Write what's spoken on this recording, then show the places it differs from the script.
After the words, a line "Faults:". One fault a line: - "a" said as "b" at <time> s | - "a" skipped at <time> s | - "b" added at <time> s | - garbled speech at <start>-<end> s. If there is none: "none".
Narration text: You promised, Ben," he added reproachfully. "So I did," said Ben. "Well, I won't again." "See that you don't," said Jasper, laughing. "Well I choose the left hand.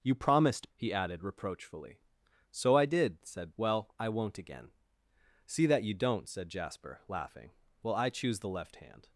You promised," He added reproachfully. "So I did," said. "Well, I won't again." "See that you don't," said Jasper, laughing. "Well I choose the left hand.
Faults:
- "Ben" skipped at 0.7 s
- "Ben" skipped at 3.5 s